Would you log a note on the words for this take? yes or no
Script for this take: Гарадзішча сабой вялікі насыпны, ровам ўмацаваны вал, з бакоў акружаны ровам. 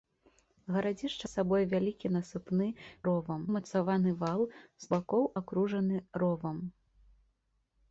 no